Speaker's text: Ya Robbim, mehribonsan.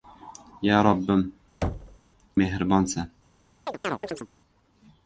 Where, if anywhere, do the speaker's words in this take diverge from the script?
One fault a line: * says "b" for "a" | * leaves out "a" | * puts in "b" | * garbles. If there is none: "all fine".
all fine